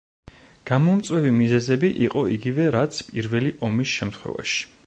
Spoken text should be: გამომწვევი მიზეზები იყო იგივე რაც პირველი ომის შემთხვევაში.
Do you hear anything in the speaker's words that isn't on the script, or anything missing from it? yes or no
no